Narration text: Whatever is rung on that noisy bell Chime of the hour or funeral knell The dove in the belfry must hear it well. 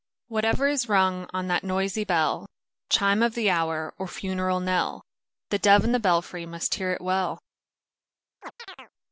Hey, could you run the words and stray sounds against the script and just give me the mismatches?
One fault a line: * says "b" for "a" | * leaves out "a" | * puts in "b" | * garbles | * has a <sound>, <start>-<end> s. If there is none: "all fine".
* has a chirp, 8.4-8.9 s